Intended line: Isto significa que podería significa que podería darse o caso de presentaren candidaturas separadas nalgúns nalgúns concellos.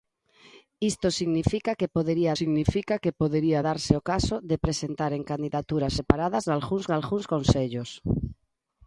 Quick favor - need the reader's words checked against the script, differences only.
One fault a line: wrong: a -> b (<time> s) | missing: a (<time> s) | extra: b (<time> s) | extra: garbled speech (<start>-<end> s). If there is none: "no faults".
no faults